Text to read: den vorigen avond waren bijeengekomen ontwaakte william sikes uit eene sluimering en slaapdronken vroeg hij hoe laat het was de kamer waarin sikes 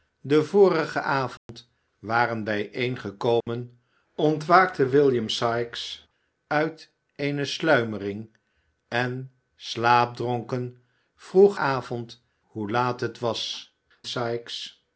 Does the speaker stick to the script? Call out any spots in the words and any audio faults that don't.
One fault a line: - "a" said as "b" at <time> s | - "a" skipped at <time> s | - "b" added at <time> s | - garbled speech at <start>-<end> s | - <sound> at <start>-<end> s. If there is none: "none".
- dropout at 1.4-1.5 s
- dropout at 3.4-3.5 s
- "hij" said as "avond" at 11.6 s
- "de kamer waarin" skipped at 13.7 s